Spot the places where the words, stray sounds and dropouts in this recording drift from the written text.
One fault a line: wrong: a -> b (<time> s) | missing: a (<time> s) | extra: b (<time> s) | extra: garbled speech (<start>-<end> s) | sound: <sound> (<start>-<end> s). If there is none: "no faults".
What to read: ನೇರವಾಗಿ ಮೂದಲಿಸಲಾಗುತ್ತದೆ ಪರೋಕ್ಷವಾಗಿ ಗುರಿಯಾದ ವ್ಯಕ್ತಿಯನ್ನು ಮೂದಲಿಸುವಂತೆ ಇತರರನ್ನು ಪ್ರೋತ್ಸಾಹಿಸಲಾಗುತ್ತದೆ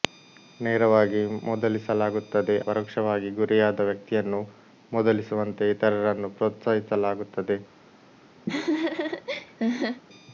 sound: laugh (8.5-10.0 s)